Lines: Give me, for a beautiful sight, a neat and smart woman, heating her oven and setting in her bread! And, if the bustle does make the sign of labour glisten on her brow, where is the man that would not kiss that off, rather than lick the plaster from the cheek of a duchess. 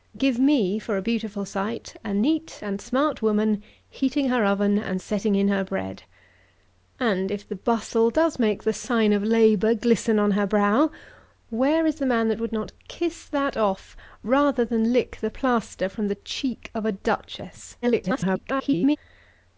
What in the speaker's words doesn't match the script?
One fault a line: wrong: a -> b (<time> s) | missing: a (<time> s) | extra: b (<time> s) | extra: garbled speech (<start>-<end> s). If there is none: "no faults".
extra: garbled speech (17.8-19.0 s)